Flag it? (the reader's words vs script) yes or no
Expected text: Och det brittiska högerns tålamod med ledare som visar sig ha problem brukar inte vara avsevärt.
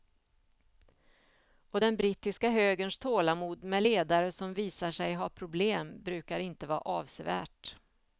yes